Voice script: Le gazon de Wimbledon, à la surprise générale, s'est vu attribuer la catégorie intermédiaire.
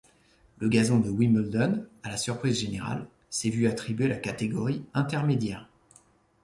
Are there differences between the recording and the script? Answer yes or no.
no